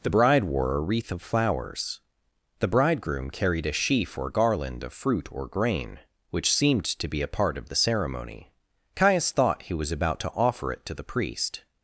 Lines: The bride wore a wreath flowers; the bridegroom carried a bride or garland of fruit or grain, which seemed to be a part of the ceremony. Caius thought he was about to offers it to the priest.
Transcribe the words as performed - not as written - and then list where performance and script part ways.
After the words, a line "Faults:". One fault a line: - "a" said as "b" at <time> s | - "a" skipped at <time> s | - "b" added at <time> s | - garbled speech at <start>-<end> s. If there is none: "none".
The bride wore a wreath of flowers; the bridegroom carried a sheaf or garland of fruit or grain, which seemed to be a part of the ceremony. Caius thought he was about to offer it to the priest.
Faults:
- "of" added at 1.1 s
- "bride" said as "sheaf" at 3.7 s
- "offers" said as "offer" at 10.3 s